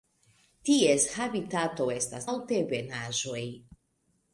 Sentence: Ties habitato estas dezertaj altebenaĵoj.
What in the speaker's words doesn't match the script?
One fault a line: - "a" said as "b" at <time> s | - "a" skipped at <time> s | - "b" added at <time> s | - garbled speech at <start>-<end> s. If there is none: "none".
- "dezertaj" skipped at 2.3 s